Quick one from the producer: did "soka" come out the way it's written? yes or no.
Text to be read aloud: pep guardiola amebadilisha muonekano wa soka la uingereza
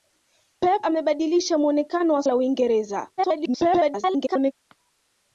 no